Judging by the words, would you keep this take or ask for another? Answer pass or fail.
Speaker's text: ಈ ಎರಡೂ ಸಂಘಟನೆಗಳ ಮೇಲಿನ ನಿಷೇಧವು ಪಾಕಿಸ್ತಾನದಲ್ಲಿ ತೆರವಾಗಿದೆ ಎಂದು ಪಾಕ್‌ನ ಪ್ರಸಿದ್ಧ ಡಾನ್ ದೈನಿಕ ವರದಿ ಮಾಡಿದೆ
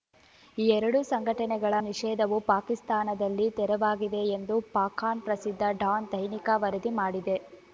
fail